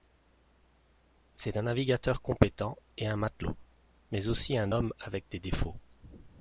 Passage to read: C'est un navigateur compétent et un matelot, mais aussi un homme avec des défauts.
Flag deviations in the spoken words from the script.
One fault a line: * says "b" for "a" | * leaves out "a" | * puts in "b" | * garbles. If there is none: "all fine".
all fine